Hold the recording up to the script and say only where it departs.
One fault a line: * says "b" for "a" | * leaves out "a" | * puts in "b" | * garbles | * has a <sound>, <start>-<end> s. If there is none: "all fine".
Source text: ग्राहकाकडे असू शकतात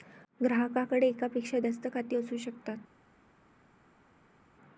* puts in "एकापेक्षा जास्त खाती"